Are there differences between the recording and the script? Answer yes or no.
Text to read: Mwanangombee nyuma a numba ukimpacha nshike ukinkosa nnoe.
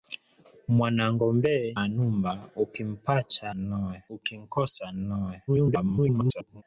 yes